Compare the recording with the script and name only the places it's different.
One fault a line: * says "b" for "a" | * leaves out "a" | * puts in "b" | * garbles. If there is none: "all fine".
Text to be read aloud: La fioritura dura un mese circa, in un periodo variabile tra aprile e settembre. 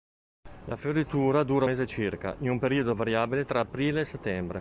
* leaves out "un"